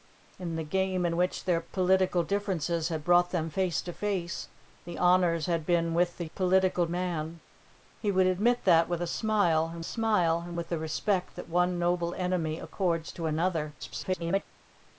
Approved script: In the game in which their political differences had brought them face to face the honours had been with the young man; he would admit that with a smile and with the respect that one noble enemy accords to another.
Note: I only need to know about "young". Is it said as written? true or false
false